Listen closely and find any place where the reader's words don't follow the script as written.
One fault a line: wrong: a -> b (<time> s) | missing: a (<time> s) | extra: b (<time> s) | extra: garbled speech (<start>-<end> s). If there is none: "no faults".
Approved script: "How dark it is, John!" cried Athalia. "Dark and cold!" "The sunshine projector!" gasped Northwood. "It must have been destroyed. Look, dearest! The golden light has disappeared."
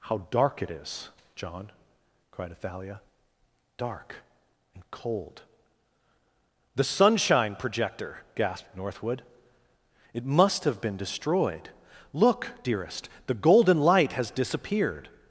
no faults